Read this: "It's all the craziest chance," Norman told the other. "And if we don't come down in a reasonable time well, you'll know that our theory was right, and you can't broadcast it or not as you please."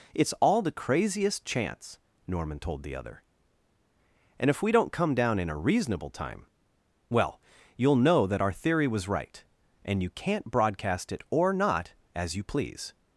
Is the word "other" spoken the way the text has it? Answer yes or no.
yes